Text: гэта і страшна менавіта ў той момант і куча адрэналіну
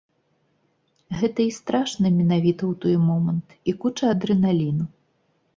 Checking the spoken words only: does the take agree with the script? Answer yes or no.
yes